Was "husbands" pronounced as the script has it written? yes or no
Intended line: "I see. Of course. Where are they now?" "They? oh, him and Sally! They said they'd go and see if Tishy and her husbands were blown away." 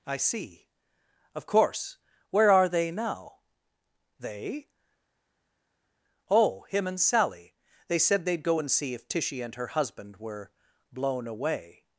no